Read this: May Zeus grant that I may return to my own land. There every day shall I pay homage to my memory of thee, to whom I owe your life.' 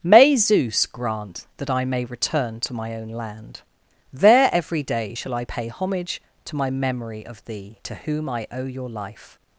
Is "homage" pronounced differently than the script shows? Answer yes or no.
no